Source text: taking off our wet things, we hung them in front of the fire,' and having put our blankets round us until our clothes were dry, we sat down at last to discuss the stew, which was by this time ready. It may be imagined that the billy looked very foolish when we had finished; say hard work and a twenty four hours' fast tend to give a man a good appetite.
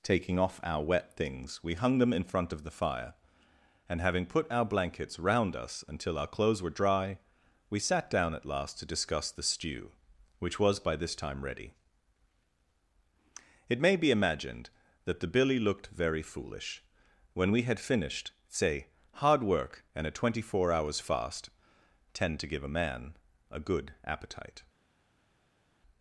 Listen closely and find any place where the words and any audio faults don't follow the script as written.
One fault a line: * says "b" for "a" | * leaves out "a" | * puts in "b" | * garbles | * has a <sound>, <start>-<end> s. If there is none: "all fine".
all fine